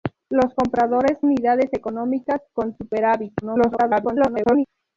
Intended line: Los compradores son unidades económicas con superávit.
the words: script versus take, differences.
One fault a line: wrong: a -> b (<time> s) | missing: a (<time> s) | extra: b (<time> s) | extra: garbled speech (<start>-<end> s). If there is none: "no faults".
missing: son (1.2 s)
extra: garbled speech (3.4-4.7 s)